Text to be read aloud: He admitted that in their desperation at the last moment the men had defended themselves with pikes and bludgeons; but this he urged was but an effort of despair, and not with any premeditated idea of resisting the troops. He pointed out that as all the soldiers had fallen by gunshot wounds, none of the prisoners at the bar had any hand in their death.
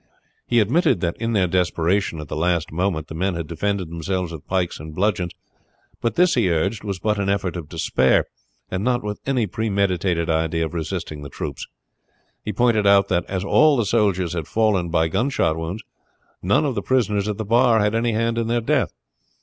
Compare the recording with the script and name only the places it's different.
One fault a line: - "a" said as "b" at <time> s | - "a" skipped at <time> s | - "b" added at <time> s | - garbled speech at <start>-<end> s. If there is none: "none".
none